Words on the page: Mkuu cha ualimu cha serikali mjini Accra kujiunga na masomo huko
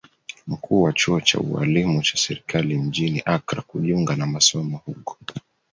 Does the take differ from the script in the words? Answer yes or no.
yes